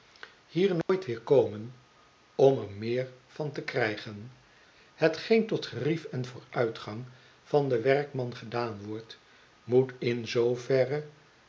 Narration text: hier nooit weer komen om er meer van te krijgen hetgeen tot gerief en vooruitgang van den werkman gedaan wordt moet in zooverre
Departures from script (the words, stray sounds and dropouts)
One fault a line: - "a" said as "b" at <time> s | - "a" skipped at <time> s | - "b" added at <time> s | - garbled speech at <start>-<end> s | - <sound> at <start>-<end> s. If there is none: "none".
- dropout at 0.8-0.9 s